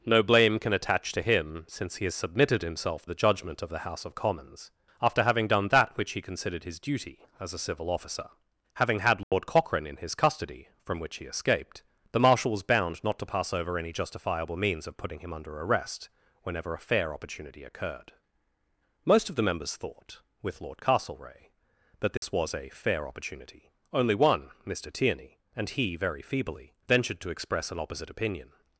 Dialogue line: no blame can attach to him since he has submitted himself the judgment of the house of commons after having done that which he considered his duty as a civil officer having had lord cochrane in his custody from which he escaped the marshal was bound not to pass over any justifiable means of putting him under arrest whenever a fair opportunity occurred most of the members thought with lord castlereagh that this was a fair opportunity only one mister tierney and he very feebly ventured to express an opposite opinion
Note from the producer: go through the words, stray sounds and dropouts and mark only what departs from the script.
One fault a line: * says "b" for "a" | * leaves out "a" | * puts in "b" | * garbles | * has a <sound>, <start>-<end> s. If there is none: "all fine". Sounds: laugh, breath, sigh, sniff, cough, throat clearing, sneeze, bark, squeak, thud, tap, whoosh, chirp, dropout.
* has a dropout, 9.2-9.3 s
* has a dropout, 22.2-22.2 s